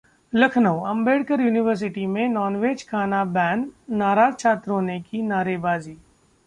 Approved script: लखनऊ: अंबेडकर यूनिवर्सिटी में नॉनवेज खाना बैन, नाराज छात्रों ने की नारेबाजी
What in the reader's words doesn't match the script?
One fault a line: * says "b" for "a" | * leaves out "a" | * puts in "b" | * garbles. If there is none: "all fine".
all fine